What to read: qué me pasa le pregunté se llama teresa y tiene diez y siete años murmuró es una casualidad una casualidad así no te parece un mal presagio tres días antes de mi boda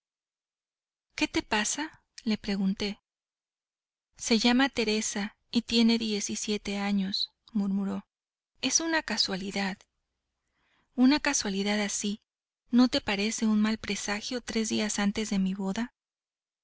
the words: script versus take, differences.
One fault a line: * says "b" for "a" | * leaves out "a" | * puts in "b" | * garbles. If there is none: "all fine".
* says "te" for "me"